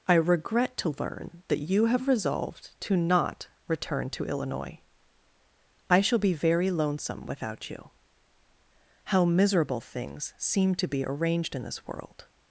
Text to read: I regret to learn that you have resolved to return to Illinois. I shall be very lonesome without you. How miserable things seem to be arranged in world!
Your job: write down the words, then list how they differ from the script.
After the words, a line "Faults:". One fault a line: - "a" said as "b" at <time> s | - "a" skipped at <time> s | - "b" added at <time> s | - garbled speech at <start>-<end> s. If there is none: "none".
I regret to learn that you have resolved to not return to Illinois. I shall be very lonesome without you. How miserable things seem to be arranged in this world!
Faults:
- "not" added at 3.0 s
- "this" added at 11.6 s